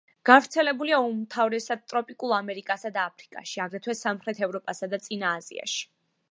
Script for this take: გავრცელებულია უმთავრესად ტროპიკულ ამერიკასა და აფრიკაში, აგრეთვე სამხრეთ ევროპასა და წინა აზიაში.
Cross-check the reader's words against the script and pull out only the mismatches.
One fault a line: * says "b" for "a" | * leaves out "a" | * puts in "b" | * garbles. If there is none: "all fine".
all fine